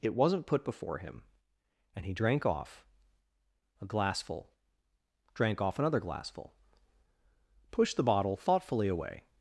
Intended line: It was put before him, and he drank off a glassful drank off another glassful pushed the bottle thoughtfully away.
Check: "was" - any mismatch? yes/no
yes